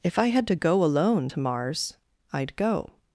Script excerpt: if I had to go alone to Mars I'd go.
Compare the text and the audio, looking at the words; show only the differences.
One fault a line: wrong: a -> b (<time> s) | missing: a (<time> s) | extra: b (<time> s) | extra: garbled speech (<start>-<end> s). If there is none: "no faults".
no faults